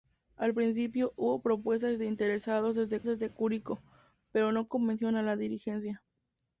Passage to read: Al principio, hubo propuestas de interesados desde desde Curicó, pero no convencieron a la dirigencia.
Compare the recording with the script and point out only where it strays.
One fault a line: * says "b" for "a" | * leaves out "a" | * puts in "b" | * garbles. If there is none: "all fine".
all fine